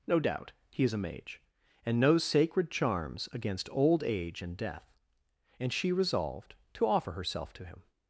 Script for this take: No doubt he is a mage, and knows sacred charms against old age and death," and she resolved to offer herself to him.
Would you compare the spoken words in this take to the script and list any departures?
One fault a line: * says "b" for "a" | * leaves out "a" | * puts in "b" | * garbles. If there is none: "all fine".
all fine